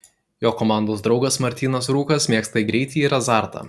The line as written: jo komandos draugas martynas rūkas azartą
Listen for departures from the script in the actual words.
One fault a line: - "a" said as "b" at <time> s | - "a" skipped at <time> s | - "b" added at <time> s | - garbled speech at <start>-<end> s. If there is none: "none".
- "mėgsta greitį ir" added at 2.3 s